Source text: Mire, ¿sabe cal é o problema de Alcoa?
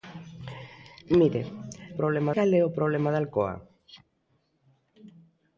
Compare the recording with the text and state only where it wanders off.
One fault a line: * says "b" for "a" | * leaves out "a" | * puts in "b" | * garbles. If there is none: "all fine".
* says "problema" for "sabe"